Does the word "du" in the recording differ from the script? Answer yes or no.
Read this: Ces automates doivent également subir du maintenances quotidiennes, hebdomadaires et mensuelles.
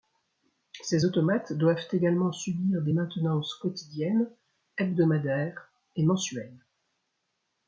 yes